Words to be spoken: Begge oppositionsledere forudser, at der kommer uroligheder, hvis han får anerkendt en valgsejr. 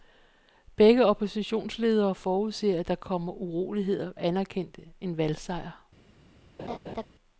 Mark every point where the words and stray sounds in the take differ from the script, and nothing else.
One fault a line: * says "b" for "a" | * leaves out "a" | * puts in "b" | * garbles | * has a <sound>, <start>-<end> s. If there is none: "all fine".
* leaves out "hvis han får"
* has a laugh, 6.6-7.1 s